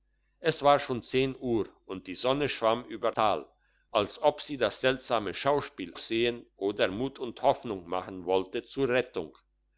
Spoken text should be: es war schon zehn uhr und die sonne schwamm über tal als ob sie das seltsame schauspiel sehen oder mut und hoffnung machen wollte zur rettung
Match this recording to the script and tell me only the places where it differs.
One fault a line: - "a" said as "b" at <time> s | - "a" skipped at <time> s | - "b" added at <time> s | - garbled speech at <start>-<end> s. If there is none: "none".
none